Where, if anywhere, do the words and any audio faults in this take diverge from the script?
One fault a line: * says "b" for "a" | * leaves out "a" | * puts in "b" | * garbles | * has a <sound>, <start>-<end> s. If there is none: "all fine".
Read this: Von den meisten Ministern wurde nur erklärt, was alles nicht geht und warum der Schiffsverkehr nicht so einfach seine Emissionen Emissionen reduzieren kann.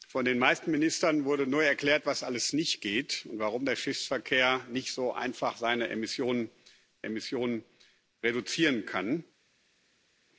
all fine